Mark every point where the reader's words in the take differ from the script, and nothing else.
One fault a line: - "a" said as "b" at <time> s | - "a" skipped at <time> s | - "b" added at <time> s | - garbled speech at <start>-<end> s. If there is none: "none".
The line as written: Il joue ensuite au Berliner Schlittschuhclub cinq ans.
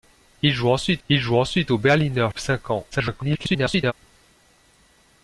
- "il joue ensuite" added at 1.1 s
- "Schlittschuhclub" skipped at 2.3 s
- garbled speech at 2.9-3.9 s